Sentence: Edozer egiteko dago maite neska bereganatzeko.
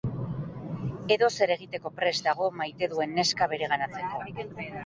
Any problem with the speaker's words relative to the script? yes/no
yes